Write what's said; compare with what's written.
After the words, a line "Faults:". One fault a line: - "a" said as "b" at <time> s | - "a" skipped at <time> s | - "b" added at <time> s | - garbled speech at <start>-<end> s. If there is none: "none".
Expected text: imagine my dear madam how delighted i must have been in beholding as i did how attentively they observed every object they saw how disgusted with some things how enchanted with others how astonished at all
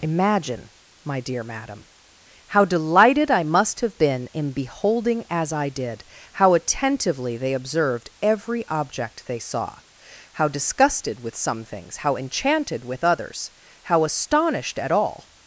imagine my dear madam how delighted i must have been in beholding as i did how attentively they observed every object they saw how disgusted with some things how enchanted with others how astonished at all
Faults:
none